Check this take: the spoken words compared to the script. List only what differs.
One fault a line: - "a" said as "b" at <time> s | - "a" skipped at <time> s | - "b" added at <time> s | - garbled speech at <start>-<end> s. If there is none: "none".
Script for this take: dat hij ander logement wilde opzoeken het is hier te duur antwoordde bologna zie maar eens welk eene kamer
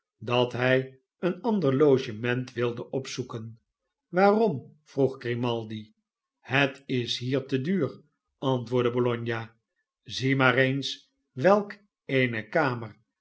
- "een" added at 1.2 s
- "waarom vroeg grimaldi" added at 4.1 s